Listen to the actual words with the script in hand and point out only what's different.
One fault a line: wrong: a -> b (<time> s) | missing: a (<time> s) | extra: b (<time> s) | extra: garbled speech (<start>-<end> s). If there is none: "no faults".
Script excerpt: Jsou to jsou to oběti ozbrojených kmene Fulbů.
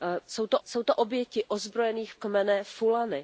no faults